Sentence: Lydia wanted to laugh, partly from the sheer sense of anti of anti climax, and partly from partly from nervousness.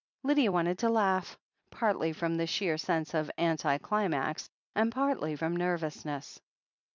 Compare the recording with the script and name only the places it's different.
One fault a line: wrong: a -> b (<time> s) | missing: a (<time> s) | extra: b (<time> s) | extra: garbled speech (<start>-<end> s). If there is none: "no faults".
missing: of anti (3.8 s)
missing: partly from (5.6 s)